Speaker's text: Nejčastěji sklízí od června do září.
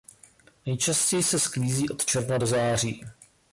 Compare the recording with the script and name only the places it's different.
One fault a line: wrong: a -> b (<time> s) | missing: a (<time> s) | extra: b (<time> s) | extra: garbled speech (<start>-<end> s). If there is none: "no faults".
extra: se (1.2 s)